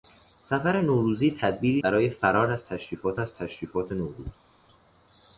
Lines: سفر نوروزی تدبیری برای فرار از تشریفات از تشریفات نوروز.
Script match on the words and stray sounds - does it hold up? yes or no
yes